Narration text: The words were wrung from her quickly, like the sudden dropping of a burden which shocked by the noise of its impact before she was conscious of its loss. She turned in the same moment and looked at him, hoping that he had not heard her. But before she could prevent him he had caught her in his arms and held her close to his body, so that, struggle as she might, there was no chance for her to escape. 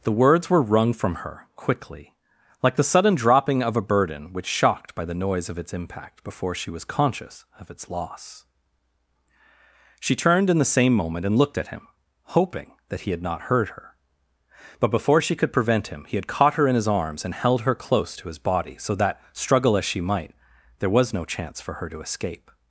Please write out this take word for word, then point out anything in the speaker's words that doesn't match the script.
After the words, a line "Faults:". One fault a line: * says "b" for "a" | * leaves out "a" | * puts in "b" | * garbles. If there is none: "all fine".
The words were wrung from her quickly, like the sudden dropping of a burden which shocked by the noise of its impact before she was conscious of its loss. She turned in the same moment and looked at him, hoping that he had not heard her. But before she could prevent him he had caught her in his arms and held her close to his body, so that, struggle as she might, there was no chance for her to escape.
Faults:
all fine